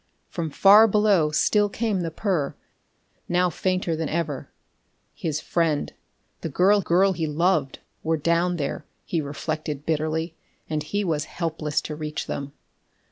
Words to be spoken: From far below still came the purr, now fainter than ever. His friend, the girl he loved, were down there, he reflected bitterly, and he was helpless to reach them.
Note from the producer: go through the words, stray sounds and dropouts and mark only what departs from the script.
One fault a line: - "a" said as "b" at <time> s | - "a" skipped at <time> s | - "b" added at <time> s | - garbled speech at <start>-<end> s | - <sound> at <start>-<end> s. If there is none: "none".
- "girl" added at 6.8 s